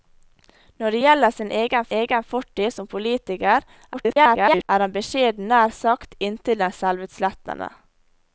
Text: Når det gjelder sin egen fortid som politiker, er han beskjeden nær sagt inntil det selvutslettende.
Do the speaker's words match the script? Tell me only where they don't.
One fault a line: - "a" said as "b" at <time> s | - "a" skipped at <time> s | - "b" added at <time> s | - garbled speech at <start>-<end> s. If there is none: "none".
- "egen" added at 2.0 s
- garbled speech at 3.9-4.7 s